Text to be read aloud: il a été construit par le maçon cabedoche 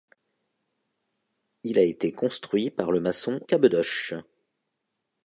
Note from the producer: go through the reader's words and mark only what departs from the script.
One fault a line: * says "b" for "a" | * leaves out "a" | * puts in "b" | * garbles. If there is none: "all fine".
all fine